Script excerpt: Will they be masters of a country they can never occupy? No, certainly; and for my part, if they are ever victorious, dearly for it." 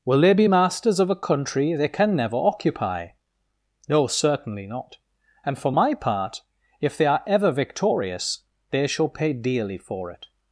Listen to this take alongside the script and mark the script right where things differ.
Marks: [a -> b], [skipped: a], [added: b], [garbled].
Will they be masters of a country they can never occupy? No, certainly; [added: not] and for my part, if they are ever victorious, [added: they shall pay] dearly for it."